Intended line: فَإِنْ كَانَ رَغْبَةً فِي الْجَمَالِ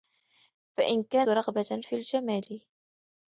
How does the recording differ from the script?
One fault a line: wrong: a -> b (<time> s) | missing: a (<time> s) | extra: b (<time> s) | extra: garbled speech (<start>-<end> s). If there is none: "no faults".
no faults